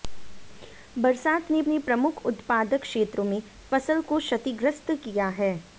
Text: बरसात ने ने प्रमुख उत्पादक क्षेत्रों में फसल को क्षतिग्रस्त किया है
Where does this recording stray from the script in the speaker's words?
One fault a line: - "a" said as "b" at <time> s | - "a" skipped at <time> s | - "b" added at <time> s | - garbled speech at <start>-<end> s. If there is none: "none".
none